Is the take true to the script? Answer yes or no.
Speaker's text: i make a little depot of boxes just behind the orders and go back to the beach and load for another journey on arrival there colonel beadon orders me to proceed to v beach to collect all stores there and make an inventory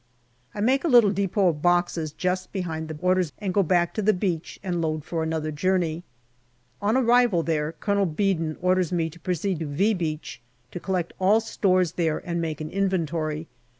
yes